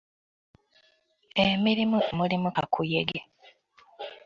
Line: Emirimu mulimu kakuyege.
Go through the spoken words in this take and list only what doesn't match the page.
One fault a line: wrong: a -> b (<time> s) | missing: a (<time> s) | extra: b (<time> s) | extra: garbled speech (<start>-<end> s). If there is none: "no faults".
no faults